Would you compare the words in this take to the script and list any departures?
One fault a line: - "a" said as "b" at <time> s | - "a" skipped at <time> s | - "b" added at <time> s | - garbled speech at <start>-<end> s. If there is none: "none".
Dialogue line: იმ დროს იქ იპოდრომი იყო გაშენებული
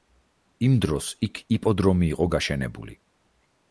none